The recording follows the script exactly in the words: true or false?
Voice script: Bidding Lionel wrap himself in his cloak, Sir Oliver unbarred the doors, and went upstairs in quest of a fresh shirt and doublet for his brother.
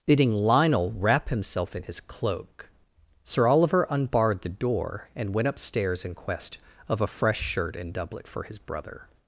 false